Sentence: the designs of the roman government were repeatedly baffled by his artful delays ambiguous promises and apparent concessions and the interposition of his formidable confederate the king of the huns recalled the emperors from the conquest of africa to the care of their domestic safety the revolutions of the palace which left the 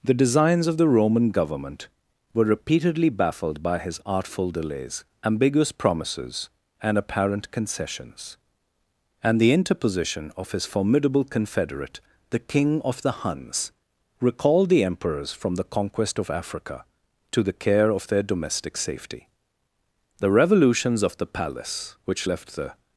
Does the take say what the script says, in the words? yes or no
yes